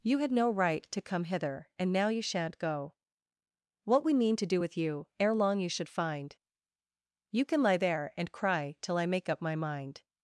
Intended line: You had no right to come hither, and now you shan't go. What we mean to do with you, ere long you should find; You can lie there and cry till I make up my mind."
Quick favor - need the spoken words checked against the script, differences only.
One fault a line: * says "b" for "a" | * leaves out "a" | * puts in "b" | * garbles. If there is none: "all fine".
all fine